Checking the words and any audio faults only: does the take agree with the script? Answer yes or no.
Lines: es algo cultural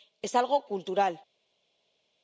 yes